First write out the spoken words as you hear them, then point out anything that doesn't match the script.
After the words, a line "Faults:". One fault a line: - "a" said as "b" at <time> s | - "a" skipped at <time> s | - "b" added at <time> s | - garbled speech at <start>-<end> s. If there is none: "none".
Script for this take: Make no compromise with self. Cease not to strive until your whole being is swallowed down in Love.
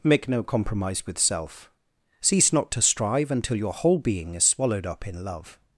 Make no compromise with self. Cease not to strive until your whole being is swallowed up in Love.
Faults:
- "down" said as "up" at 4.9 s